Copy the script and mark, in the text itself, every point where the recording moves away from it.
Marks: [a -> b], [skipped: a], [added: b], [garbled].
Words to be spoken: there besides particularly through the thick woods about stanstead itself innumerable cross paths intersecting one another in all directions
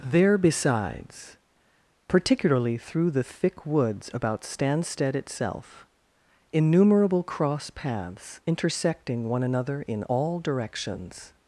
there besides particularly through the thick woods about stanstead itself innumerable cross paths intersecting one another in all directions